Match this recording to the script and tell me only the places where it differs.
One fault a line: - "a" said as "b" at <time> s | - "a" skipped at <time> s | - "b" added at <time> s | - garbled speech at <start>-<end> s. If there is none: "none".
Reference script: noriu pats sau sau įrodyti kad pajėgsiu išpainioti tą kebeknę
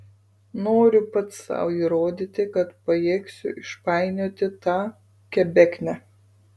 - "sau" skipped at 1.7 s